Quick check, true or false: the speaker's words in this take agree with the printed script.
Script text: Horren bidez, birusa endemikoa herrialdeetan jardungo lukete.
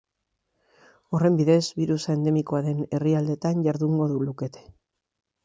false